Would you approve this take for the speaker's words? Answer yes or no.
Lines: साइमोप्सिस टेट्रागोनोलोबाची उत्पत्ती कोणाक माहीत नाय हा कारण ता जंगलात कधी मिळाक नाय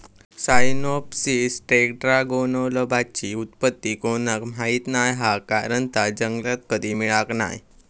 yes